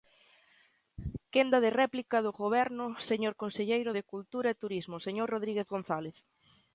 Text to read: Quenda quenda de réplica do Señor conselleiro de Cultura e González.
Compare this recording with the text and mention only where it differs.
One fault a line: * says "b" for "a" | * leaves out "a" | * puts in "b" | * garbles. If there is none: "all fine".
* leaves out "quenda"
* puts in "Goberno"
* puts in "Turismo señor Rodríguez"